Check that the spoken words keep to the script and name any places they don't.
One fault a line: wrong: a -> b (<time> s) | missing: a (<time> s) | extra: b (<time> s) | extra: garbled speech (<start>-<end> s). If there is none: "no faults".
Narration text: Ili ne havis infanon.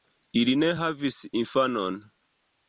no faults